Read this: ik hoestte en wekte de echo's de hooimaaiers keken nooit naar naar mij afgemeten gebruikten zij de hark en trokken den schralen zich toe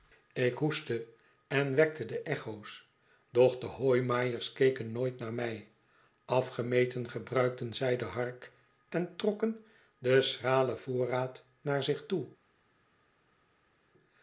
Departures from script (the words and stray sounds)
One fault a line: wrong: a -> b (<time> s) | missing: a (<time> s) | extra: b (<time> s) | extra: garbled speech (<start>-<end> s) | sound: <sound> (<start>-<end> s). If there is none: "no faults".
extra: doch (3.3 s)
missing: naar (5.3 s)
extra: voorraad naar (10.8 s)